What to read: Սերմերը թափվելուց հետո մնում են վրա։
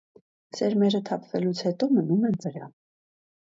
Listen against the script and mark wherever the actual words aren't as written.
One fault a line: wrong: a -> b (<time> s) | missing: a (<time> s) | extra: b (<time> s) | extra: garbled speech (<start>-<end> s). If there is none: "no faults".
no faults